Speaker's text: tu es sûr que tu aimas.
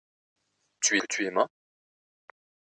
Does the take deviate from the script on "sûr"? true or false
true